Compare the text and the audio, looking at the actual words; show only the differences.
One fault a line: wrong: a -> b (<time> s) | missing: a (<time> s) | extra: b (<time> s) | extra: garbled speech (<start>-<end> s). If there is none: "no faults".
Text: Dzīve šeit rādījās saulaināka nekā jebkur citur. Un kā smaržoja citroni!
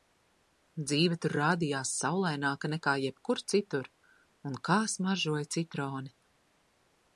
wrong: šeit -> tur (1.2 s)